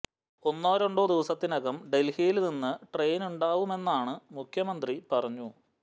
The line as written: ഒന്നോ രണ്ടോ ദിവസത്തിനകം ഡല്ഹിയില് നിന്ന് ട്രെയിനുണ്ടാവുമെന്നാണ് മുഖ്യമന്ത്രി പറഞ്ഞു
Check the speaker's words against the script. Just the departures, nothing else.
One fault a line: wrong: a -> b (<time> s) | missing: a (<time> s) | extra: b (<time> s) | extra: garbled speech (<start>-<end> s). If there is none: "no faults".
no faults